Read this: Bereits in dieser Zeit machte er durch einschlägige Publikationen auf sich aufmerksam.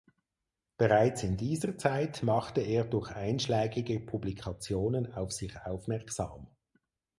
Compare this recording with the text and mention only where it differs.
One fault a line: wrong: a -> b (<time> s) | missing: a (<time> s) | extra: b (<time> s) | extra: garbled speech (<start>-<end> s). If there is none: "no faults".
no faults